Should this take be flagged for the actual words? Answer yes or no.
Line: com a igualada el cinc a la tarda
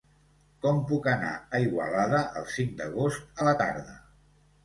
yes